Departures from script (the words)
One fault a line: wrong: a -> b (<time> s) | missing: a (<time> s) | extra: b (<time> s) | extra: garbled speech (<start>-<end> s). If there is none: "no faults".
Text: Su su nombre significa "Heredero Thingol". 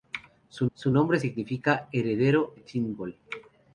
no faults